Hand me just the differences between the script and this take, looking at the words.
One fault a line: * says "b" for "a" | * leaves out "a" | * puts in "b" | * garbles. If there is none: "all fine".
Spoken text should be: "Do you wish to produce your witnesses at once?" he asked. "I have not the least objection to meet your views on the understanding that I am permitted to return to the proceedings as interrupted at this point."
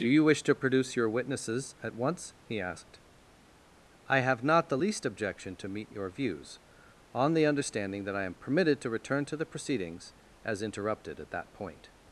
* says "that" for "this"